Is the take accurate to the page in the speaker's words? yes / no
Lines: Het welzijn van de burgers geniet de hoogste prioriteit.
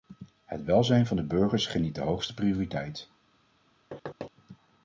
yes